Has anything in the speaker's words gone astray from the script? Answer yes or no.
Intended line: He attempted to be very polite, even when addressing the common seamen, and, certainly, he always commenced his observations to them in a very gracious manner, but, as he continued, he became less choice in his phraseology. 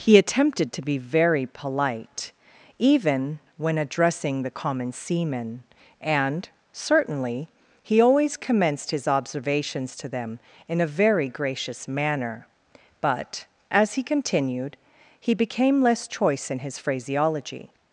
no